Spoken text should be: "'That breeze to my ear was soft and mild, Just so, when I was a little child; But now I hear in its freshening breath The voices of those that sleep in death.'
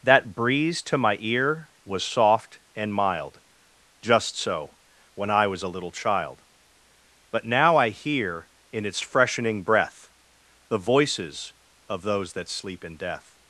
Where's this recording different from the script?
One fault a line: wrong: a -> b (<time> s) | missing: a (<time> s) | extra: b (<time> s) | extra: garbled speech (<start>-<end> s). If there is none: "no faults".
no faults